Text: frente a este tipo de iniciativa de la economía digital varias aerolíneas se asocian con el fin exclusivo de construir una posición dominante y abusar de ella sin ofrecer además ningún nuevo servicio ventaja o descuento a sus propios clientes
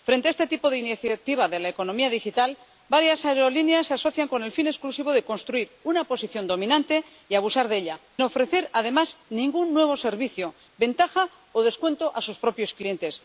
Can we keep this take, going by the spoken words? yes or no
no